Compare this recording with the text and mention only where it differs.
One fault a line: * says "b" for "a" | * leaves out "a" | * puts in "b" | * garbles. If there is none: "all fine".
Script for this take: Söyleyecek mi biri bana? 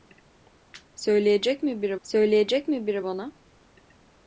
* puts in "söyleyecek mi biri"